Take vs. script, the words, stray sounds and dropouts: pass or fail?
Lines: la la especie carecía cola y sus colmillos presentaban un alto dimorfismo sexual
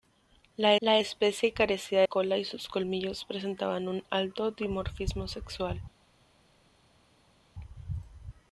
pass